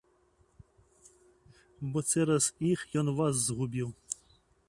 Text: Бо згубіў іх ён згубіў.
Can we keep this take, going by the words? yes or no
no